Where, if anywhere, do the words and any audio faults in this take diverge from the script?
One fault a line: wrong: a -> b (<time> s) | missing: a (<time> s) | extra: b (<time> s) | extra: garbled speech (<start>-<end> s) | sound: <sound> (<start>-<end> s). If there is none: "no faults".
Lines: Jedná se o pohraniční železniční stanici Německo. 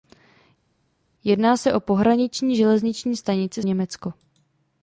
no faults